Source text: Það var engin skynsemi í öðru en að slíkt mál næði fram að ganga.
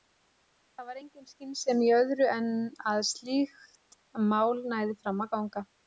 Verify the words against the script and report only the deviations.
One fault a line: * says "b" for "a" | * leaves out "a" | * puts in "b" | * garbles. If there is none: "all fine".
all fine